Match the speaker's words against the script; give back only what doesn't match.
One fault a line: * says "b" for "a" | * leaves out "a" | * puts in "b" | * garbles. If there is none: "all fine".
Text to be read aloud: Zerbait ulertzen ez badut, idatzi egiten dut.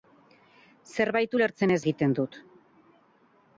* leaves out "badut idatzi"